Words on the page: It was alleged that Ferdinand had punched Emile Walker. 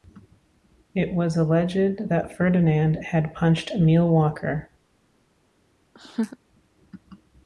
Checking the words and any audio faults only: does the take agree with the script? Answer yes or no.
no